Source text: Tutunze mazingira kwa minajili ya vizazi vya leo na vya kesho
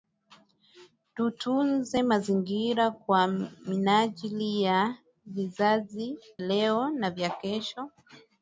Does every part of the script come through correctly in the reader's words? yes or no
no